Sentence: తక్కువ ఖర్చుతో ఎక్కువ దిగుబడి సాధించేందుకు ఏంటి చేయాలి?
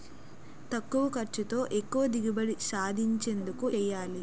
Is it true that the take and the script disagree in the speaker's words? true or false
true